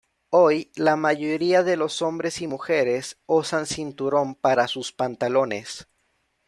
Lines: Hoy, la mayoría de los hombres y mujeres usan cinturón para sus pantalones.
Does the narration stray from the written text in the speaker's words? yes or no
no